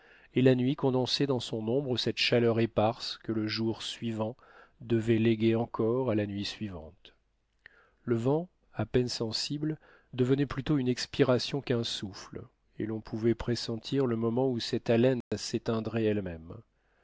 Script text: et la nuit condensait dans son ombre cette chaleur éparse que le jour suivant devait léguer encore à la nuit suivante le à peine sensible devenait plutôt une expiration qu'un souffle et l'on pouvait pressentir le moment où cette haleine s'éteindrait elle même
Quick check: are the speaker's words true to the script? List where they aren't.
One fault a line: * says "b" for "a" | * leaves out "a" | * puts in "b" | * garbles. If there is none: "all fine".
* puts in "vent"